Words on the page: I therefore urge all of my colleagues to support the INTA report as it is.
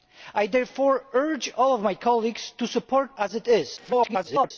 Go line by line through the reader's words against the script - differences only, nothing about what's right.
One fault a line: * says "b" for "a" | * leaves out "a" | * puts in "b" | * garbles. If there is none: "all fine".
* leaves out "the INTA report"
* garbles